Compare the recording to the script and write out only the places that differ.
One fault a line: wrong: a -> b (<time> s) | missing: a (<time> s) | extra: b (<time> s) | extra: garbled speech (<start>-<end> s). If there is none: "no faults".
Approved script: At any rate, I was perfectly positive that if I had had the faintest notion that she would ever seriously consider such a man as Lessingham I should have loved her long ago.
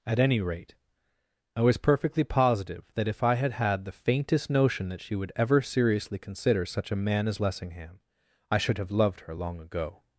no faults